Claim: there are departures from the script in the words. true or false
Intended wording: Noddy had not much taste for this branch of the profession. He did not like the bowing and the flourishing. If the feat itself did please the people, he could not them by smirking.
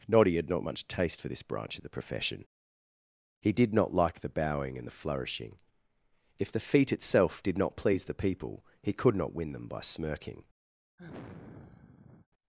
true